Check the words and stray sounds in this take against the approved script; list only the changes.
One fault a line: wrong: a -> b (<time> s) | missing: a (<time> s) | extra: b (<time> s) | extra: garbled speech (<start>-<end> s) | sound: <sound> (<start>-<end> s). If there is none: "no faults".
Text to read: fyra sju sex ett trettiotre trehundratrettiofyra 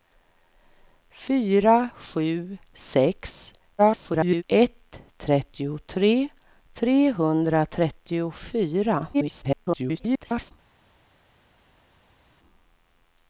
extra: garbled speech (3.8-4.4 s)
extra: garbled speech (9.1-10.5 s)